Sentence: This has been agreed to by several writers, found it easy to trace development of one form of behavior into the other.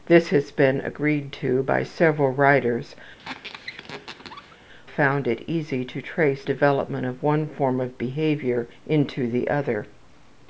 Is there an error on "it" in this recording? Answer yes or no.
no